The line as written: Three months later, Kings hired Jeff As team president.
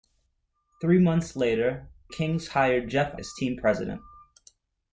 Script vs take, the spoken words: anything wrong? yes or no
no